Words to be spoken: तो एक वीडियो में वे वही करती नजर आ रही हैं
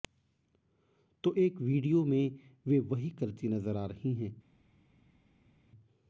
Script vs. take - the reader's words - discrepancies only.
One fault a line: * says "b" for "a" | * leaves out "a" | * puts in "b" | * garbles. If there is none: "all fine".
all fine